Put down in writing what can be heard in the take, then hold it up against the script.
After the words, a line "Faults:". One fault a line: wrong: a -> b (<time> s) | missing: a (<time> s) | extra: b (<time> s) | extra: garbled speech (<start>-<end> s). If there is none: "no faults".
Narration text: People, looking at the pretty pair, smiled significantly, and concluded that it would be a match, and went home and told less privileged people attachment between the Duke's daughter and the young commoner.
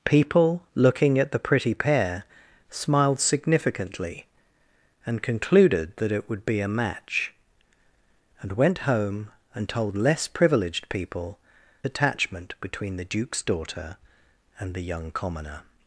People, looking at the pretty pair, smiled significantly, and concluded that it would be a match, and went home and told less privileged people attachment between the Duke's daughter and the young commoner.
Faults:
no faults